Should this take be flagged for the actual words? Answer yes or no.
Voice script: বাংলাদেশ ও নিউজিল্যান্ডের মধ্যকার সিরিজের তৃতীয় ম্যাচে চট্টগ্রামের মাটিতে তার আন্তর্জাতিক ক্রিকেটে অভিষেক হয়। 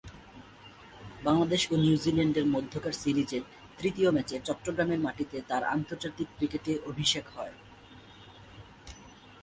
no